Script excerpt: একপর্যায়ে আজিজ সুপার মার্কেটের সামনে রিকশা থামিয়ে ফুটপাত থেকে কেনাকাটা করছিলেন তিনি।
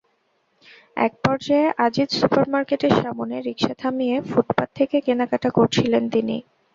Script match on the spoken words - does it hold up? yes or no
yes